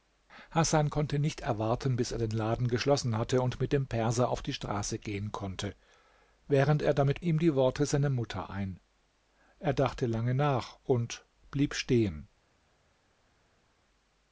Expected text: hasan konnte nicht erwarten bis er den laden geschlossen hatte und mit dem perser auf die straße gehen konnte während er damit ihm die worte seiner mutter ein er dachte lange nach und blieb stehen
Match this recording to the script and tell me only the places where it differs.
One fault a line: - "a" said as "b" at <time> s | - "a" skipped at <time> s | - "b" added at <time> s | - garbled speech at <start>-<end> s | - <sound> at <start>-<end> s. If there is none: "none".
none